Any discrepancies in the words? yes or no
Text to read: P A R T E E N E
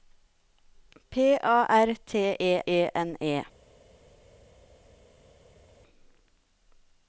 no